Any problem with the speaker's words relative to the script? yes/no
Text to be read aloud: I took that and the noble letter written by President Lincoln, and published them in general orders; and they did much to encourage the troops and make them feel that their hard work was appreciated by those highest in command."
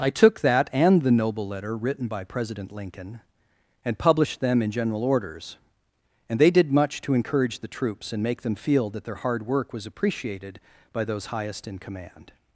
no